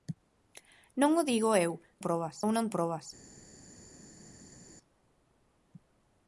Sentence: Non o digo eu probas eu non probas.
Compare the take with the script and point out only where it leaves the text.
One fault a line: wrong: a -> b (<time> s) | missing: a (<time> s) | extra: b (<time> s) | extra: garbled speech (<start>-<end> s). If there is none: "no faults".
no faults